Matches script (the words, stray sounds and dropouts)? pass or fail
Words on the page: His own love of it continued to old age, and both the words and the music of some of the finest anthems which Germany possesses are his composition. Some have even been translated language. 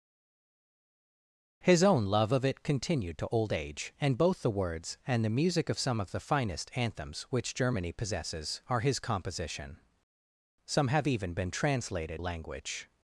pass